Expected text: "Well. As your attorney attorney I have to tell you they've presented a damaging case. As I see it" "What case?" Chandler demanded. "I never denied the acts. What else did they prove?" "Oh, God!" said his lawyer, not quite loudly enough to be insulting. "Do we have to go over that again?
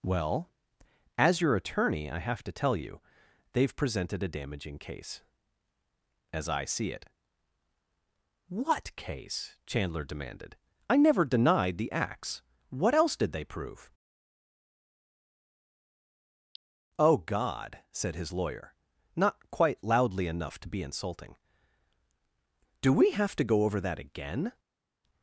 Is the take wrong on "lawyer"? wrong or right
right